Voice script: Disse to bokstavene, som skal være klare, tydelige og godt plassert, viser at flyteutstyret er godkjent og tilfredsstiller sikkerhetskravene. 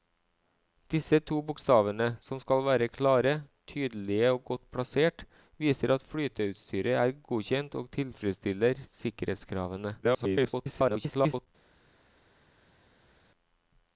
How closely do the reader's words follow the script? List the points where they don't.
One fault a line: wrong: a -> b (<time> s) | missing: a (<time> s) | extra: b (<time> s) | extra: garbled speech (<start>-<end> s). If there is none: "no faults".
extra: garbled speech (10.0-11.5 s)